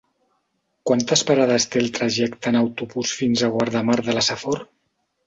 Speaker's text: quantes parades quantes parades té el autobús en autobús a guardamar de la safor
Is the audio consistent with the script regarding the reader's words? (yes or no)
no